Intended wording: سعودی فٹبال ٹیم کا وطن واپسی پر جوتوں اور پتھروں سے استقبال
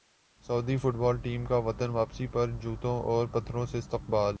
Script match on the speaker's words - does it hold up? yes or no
yes